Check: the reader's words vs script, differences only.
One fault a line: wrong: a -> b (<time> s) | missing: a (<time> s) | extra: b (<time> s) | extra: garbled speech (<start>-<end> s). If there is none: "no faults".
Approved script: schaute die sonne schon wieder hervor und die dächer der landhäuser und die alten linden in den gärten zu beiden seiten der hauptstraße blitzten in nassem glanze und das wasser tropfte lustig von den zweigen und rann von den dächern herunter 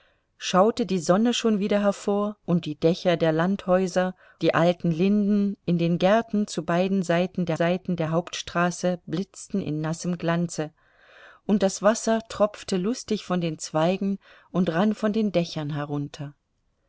missing: und (4.2 s)
extra: seiten der (7.5 s)